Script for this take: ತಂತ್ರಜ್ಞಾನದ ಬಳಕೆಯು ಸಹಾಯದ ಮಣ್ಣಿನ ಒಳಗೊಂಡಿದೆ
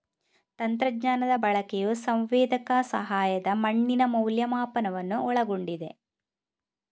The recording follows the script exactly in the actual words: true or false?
false